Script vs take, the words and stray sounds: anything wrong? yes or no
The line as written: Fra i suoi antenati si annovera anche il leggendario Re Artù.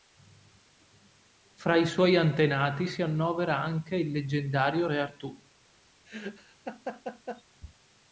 yes